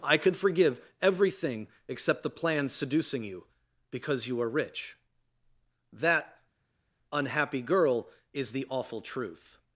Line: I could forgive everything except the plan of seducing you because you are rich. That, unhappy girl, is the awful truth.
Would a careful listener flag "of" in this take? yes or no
yes